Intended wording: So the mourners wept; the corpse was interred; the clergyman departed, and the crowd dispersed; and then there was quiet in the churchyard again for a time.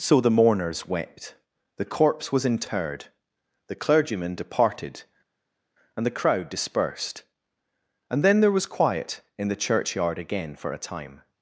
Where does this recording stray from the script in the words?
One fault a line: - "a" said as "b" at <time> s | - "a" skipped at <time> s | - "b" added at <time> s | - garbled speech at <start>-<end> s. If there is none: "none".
none